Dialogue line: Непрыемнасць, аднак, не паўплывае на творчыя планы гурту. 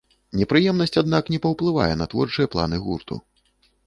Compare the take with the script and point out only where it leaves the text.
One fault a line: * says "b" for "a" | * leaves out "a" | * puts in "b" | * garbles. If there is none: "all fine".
all fine